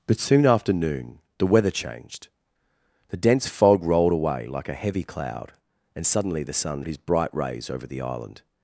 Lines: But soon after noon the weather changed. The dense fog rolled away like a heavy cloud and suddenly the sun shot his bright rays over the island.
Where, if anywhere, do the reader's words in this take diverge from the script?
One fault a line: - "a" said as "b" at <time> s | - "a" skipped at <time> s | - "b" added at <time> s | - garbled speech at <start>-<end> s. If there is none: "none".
- "shot" skipped at 6.8 s